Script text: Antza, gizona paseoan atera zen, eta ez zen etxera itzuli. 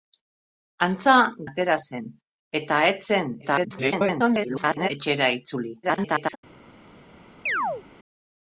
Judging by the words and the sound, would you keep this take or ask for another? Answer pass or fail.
fail